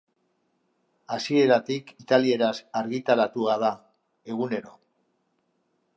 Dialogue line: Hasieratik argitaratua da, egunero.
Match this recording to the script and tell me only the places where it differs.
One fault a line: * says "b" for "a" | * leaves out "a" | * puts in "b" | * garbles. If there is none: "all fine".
* puts in "italieraz"